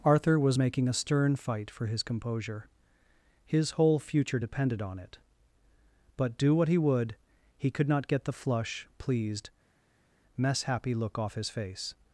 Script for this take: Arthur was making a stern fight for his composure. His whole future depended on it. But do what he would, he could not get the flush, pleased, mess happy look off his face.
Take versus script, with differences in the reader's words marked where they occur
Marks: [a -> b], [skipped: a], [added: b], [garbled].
Arthur was making a stern fight for his composure. His whole future depended on it. But do what he would, he could not get the flush, pleased, mess happy look off his face.